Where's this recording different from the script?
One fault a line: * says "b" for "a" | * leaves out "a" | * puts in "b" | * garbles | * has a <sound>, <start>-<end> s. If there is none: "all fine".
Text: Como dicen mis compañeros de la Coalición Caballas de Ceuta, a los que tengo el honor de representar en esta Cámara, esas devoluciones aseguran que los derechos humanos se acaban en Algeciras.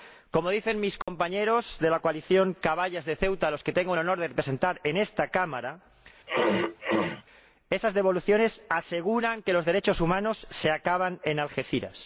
* has a dropout, 1.0-1.1 s
* has a throat clearing, 6.3-7.2 s